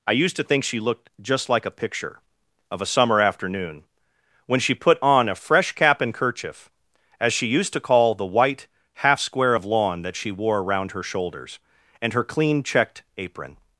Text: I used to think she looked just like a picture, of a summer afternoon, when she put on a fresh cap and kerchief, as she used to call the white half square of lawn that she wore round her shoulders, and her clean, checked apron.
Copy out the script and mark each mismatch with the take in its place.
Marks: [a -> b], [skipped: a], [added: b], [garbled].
I used to think she looked just like a picture, of a summer afternoon, when she put on a fresh cap and kerchief, as she used to call the white half square of lawn that she wore [round -> around] her shoulders, and her clean, checked apron.